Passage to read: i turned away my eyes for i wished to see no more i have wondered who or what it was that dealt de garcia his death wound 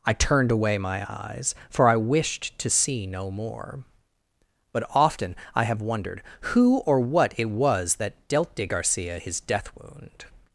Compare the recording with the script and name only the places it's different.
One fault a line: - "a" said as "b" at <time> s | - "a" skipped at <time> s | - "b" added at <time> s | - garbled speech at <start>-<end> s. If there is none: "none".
- "but often" added at 4.7 s